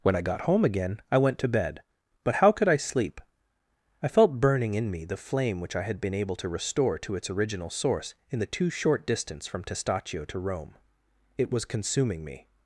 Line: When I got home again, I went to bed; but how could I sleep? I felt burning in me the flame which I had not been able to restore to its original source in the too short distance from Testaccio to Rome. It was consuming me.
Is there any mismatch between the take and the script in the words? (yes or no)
yes